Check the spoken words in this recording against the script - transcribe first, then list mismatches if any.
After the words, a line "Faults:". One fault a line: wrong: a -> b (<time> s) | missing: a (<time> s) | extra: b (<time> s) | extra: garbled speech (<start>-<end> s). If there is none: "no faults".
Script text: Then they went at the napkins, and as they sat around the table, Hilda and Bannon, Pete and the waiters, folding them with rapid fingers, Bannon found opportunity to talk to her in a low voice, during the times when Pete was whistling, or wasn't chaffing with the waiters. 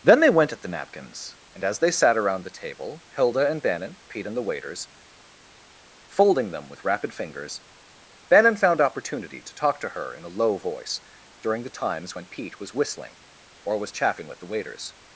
Then they went at the napkins, and as they sat around the table, Hilda and Bannon, Pete and the waiters, folding them with rapid fingers, Bannon found opportunity to talk to her in a low voice, during the times when Pete was whistling, or was chaffing with the waiters.
Faults:
wrong: wasn't -> was (13.8 s)